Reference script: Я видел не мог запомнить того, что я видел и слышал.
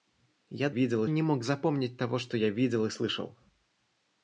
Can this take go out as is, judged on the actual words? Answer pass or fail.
pass